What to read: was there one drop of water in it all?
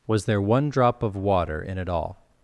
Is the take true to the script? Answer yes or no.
yes